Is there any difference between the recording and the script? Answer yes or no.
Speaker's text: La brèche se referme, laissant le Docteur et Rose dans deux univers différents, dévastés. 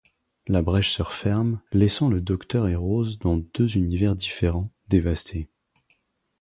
no